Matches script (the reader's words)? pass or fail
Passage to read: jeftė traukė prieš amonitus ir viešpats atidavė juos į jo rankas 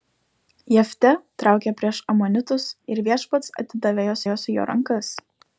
fail